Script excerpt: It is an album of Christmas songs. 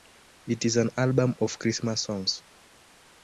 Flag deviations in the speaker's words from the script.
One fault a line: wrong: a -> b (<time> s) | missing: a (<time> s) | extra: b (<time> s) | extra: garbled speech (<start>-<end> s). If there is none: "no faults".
no faults